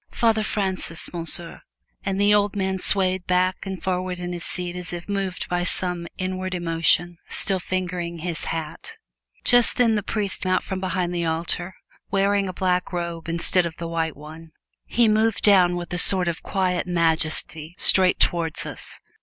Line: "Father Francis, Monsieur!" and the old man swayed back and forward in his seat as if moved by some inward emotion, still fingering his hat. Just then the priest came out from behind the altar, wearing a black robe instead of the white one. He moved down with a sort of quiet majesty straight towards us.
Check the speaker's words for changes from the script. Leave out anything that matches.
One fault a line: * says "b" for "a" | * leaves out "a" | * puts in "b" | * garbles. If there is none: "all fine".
* leaves out "came"